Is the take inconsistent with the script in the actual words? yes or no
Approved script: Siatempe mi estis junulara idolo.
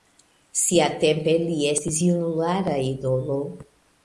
yes